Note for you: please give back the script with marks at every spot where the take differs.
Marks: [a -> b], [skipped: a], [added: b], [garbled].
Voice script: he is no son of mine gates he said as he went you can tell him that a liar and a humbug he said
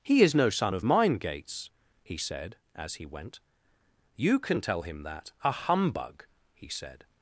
he is no son of mine gates he said as he went you can tell him that a [skipped: liar and a] humbug he said